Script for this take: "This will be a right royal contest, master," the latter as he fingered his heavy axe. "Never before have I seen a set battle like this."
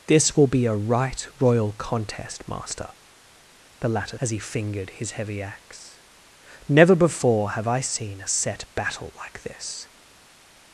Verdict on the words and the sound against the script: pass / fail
pass